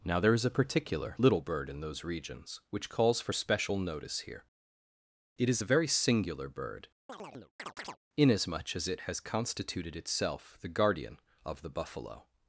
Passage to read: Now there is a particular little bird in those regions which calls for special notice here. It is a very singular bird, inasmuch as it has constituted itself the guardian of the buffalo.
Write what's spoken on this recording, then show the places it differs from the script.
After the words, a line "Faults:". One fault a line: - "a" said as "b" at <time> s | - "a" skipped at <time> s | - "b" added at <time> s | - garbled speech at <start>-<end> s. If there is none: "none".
Now there is a particular little bird in those regions which calls for special notice here. It is a very singular bird, inasmuch as it has constituted itself the guardian of the buffalo.
Faults:
none